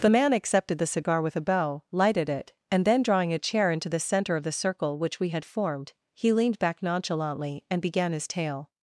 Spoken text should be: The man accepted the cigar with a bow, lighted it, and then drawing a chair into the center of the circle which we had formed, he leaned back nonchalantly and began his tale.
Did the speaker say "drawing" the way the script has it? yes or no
yes